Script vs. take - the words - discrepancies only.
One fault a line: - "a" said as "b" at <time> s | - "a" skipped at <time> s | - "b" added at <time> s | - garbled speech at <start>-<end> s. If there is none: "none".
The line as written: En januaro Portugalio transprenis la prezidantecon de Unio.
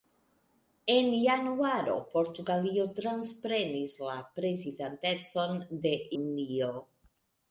none